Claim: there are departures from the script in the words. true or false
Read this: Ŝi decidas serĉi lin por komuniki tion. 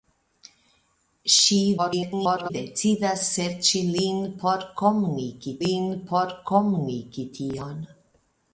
true